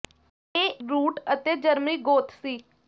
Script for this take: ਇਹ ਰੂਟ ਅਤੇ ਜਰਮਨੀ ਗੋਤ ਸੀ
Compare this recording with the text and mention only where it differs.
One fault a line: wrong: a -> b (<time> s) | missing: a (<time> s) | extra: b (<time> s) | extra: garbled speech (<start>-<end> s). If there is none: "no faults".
no faults